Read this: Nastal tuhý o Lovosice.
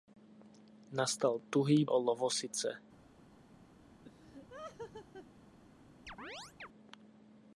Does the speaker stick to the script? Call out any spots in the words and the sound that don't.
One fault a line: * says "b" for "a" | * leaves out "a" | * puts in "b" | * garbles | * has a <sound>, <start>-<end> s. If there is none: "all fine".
* has a laugh, 4.0-5.3 s
* has a chirp, 6.1-6.7 s